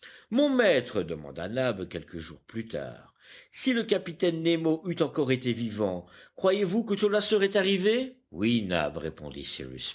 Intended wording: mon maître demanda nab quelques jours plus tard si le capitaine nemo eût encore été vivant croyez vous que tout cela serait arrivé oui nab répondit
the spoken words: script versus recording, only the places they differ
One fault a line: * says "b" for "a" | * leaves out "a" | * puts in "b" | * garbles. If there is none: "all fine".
* leaves out "tout"